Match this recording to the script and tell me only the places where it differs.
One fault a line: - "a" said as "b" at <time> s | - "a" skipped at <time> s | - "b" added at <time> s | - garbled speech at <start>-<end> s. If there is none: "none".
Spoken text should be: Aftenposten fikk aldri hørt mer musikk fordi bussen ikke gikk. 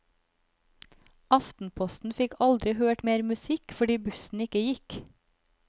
none